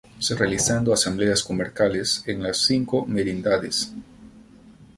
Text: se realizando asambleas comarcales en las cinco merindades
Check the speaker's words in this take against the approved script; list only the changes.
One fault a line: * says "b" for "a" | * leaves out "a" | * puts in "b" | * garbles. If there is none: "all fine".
all fine